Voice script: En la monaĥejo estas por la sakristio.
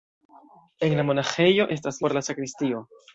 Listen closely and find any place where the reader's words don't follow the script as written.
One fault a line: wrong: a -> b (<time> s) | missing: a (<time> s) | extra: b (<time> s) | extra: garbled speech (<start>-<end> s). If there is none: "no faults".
no faults